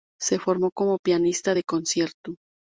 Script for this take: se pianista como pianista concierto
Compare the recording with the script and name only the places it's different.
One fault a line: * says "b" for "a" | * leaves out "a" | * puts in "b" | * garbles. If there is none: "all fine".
* says "formó" for "pianista"
* puts in "de"